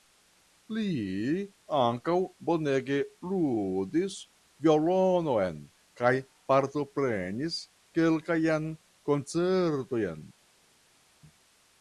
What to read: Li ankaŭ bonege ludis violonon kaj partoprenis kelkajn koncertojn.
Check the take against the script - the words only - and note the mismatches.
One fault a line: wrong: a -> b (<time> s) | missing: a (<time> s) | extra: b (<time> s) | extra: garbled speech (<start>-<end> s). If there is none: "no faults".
no faults